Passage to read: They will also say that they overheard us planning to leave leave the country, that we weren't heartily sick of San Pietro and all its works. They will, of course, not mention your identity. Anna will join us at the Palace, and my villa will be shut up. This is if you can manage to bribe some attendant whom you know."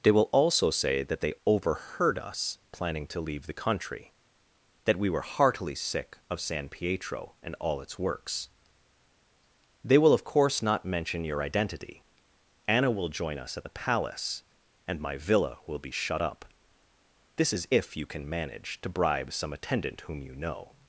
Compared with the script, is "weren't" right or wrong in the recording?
wrong